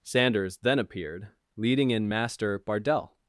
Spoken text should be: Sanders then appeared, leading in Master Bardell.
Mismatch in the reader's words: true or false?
false